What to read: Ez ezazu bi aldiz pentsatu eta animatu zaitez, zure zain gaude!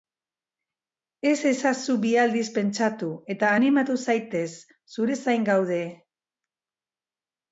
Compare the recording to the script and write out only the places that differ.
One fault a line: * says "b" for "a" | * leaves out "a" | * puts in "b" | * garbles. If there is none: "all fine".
all fine